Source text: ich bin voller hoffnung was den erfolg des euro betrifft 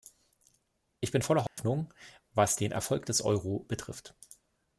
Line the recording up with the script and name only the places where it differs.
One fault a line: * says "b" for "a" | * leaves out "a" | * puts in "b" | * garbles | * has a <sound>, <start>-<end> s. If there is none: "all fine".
* has a dropout, 1.5-1.6 s